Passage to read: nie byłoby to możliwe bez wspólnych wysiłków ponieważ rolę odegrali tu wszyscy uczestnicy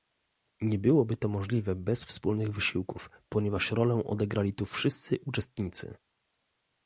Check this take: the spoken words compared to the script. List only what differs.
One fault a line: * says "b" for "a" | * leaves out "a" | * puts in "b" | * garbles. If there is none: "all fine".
all fine